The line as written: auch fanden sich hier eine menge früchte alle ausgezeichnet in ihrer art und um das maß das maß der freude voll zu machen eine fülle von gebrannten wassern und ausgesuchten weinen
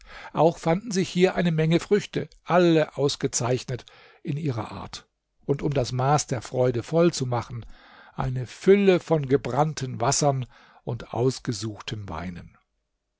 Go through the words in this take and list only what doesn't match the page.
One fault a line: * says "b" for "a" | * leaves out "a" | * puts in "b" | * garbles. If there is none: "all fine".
* leaves out "das maß"